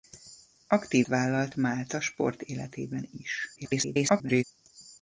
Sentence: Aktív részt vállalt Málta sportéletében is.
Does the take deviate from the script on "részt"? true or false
true